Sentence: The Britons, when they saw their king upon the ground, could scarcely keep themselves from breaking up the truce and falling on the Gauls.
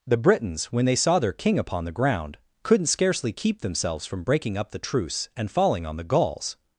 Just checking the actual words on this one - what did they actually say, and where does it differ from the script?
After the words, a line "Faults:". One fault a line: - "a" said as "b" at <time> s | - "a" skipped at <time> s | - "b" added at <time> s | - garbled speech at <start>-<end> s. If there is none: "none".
The Britons, when they saw their king upon the ground, couldn't scarcely keep themselves from breaking up the truce and falling on the Gauls.
Faults:
- "could" said as "couldn't" at 2.6 s